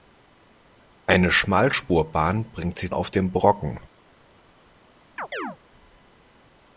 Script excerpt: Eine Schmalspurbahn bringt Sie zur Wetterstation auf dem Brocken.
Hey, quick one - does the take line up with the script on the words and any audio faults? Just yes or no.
no